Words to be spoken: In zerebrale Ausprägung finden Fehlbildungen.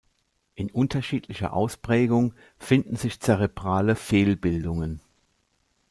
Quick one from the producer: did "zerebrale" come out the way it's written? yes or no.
no